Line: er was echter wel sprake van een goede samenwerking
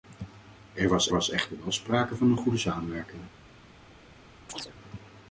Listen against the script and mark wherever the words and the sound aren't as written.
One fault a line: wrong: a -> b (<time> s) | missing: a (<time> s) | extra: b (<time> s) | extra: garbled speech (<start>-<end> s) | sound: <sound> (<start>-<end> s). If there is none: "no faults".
extra: was (1.1 s)
sound: chirp (4.5-4.8 s)